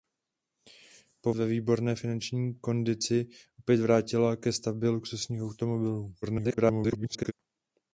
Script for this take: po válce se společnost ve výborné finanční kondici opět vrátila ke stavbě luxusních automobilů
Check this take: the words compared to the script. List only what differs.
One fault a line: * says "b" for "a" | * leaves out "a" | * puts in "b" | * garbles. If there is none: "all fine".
* leaves out "válce se společnost"
* garbles